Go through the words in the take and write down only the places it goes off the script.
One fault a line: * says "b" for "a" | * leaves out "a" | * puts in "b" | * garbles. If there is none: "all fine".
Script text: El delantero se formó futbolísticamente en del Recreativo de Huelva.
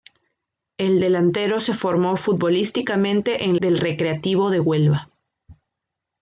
all fine